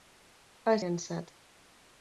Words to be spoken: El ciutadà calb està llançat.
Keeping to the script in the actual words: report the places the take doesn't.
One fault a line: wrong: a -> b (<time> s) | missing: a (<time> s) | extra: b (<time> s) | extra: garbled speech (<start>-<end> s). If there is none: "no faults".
missing: ciutadà calb està (0.8 s)